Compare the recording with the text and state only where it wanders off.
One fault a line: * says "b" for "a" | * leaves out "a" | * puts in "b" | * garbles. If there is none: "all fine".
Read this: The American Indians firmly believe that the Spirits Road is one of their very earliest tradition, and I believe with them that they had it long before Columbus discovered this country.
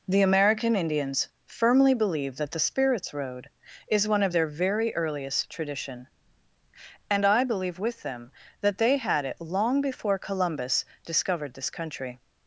all fine